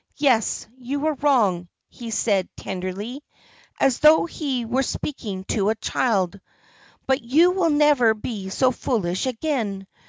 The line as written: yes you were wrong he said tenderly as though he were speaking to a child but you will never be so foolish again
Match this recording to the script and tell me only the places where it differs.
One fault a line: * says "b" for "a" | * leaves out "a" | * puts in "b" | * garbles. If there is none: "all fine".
all fine